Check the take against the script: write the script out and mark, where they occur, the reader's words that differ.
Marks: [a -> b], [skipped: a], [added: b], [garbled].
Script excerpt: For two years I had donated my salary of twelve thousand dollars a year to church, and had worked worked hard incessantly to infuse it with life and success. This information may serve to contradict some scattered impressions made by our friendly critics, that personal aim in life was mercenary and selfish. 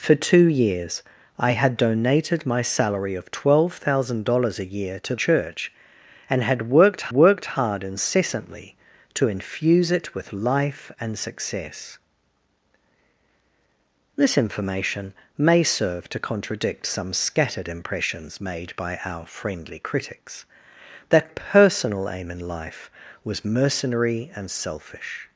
For two years I had donated my salary of twelve thousand dollars a year to church, and had worked worked hard incessantly to infuse it with life and success. This information may serve to contradict some scattered impressions made by our friendly critics, that personal aim in life was mercenary and selfish.